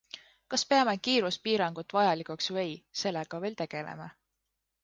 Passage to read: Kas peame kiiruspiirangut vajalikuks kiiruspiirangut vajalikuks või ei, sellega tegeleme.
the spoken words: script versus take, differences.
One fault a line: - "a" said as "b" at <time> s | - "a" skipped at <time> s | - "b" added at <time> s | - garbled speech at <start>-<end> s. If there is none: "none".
- "kiiruspiirangut vajalikuks" skipped at 2.5 s
- "veel" added at 3.5 s